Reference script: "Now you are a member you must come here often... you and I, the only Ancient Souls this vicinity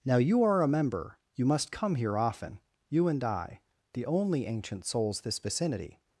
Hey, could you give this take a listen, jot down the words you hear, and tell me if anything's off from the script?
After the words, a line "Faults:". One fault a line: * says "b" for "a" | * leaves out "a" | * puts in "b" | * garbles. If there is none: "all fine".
"Now you are a member you must come here often... you and I, the only Ancient Souls this vicinity
Faults:
all fine